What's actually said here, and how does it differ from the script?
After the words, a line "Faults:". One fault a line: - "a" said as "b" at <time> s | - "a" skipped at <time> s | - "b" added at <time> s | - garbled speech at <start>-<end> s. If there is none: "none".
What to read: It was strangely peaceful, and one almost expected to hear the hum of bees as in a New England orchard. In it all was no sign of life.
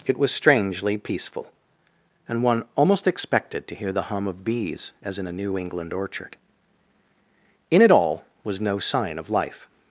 It was strangely peaceful, and one almost expected to hear the hum of bees as in a New England orchard. In it all was no sign of life.
Faults:
none